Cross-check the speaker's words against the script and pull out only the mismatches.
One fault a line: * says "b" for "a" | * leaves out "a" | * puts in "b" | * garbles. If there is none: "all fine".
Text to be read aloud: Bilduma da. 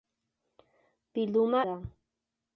all fine